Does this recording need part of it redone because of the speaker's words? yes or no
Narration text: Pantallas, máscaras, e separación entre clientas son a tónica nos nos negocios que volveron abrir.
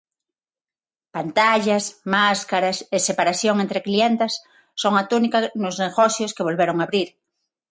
yes